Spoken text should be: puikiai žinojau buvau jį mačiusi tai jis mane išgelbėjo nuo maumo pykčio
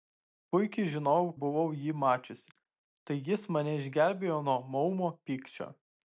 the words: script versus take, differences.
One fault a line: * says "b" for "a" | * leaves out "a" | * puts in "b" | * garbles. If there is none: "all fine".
all fine